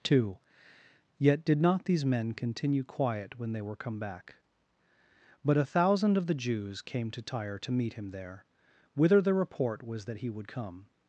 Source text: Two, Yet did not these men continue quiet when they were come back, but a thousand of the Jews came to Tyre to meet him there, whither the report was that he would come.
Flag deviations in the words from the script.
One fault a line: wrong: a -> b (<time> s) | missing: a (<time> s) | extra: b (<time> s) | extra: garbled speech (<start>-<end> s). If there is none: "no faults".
no faults